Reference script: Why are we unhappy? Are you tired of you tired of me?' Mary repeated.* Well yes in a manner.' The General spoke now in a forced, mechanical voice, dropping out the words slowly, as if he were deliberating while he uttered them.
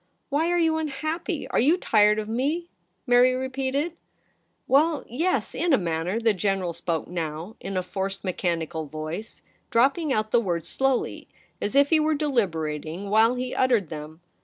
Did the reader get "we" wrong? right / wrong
wrong